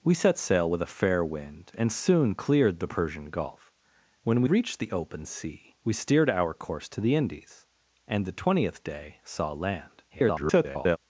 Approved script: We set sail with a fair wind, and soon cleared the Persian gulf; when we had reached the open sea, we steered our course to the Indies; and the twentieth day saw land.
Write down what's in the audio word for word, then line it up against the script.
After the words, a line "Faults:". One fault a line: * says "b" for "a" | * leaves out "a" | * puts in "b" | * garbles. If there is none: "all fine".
We set sail with a fair wind, and soon cleared the Persian gulf; when we reached the open sea, we steered our course to the Indies; and the twentieth day saw land. [garbled]
Faults:
* leaves out "had"
* garbles